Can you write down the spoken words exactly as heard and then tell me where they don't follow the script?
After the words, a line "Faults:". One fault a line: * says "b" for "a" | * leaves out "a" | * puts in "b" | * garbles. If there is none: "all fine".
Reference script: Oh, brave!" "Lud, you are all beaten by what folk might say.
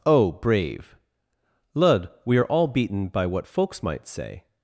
Oh, brave!" "Lud, we are all beaten by what folks might say.
Faults:
* says "we" for "you"
* says "folks" for "folk"